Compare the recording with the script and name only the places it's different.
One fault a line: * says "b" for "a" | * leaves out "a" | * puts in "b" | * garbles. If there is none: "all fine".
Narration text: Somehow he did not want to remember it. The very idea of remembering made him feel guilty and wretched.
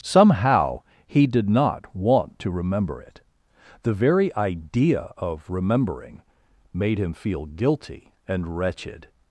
all fine